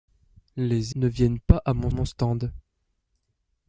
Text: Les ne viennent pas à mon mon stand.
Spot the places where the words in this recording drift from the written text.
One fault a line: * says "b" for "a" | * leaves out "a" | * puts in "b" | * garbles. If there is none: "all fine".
all fine